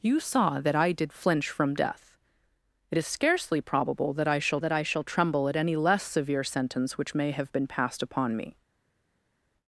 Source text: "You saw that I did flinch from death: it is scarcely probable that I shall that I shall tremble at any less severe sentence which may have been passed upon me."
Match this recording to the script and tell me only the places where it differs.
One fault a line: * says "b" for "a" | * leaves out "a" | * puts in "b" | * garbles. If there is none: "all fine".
all fine